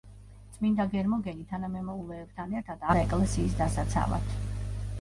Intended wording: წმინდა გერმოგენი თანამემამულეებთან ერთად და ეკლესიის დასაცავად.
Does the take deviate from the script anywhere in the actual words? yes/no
no